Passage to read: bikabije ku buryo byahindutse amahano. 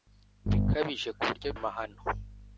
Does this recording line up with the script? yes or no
no